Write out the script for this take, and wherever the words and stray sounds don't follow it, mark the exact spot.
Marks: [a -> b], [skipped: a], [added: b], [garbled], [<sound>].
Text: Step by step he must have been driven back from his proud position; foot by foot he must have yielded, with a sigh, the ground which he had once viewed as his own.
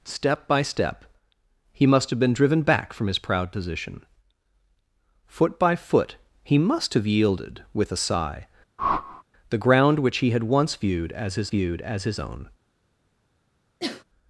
Step by step he must have been driven back from his proud position; foot by foot he must have yielded, with a sigh, [whoosh] the ground which he had once viewed as his [added: viewed as his] own. [sneeze]